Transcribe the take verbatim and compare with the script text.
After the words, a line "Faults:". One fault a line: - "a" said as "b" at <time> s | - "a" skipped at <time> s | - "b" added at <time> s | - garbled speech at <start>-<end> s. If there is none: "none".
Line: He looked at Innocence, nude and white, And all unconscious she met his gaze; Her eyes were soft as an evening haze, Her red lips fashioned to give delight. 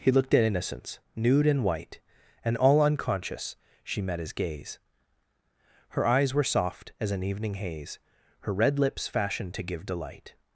He looked at Innocence, nude and white, And all unconscious she met his gaze; Her eyes were soft as an evening haze, Her red lips fashioned to give delight.
Faults:
none